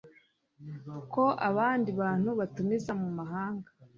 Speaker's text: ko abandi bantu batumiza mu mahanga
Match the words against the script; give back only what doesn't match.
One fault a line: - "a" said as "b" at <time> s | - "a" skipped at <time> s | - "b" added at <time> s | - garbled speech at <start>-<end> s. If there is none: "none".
none